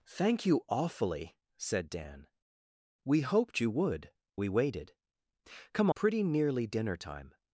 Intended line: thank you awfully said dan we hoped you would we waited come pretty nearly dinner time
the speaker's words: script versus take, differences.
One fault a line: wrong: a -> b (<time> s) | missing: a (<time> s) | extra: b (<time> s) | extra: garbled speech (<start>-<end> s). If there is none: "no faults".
no faults